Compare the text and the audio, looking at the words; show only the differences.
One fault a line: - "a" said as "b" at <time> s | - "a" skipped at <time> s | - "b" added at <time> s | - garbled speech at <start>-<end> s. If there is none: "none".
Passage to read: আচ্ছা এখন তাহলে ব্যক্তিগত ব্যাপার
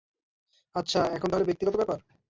none